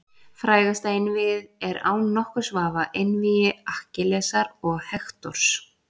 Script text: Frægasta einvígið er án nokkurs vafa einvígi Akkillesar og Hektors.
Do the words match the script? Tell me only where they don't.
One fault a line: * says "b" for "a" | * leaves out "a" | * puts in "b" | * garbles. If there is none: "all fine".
all fine